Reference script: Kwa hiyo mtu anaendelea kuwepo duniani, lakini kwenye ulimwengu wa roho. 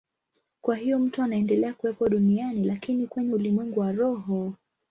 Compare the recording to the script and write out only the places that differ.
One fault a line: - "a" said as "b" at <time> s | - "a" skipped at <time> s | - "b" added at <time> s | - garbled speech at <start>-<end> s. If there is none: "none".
none